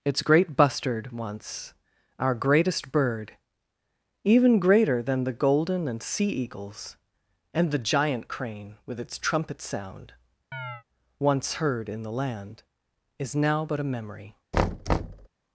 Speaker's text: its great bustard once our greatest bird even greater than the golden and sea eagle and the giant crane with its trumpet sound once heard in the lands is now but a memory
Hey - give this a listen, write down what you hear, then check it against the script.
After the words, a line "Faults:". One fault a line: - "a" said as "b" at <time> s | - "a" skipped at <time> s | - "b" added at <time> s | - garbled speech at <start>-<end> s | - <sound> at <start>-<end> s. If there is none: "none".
its great bustard once our greatest bird even greater than the golden and sea eagles and the giant crane with its trumpet sound once heard in the land is now but a memory
Faults:
- "eagle" said as "eagles" at 6.3 s
- chirp at 10.5-10.8 s
- "lands" said as "land" at 12.1 s
- thud at 14.5-15.3 s